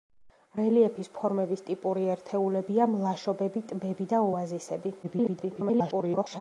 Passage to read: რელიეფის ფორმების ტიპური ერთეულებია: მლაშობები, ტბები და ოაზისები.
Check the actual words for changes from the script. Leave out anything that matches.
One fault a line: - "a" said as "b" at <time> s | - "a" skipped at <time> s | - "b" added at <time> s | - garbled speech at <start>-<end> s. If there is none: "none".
- garbled speech at 5.0-6.4 s